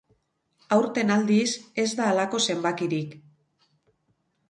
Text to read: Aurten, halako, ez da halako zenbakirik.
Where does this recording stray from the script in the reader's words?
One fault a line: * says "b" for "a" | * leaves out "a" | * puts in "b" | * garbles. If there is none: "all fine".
* says "aldiz" for "halako"